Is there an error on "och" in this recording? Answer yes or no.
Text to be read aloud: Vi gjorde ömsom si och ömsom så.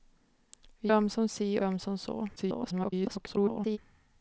yes